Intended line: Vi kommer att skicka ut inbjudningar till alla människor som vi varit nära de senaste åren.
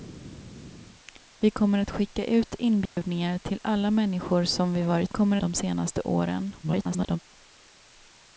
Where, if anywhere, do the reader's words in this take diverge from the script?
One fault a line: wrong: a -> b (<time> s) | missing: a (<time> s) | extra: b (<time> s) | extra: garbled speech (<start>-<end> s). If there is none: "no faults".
wrong: nära -> kommer (5.1 s)
extra: garbled speech (6.6-7.2 s)